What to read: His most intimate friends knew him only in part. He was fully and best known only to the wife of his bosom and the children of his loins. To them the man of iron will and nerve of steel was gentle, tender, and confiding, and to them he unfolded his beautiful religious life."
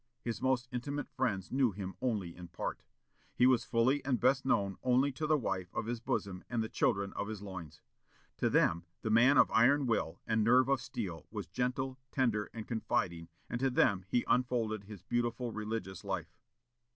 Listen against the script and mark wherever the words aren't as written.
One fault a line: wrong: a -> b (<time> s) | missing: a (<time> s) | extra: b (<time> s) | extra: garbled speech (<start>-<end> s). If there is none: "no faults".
no faults